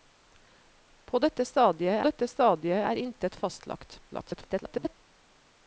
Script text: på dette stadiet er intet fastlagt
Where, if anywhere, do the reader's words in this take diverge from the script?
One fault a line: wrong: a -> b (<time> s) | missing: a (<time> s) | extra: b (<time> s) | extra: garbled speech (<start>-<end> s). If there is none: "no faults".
extra: dette stadiet (2.1 s)
extra: garbled speech (4.1-5.0 s)